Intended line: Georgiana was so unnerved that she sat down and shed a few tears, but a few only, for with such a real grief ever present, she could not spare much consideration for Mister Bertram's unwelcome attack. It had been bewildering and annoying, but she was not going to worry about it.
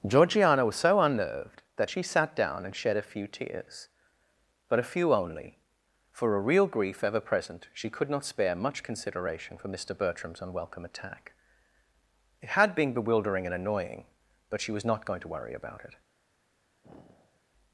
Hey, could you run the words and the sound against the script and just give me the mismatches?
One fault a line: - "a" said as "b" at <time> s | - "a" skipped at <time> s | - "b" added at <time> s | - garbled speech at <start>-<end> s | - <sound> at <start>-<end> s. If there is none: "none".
- "with such" skipped at 6.4 s
- sigh at 16.8-17.4 s